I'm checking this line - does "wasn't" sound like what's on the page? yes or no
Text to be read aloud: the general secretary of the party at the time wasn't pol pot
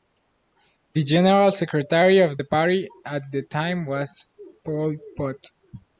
no